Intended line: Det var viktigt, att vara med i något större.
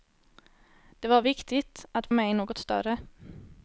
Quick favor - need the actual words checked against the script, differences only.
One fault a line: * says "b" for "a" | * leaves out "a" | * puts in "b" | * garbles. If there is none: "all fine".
* leaves out "vara"